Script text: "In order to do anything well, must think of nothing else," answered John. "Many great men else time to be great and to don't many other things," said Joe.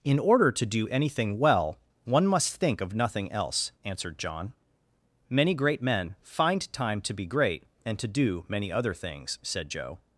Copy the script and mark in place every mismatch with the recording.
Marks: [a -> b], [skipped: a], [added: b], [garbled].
"In order to do anything well, [added: one] must think of nothing else," answered John. "Many great men [else -> find] time to be great and to [don't -> do] many other things," said Joe.